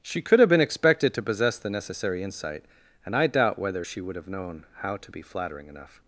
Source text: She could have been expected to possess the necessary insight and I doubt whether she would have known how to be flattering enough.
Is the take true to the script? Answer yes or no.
yes